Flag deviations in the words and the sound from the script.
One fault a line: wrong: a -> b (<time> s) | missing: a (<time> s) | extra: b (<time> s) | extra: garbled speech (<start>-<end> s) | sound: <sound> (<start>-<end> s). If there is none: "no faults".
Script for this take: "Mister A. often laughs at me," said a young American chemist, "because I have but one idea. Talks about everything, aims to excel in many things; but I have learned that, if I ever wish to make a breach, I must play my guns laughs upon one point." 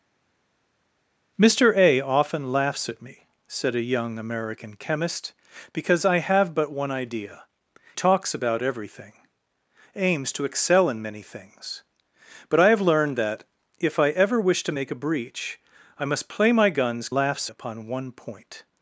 no faults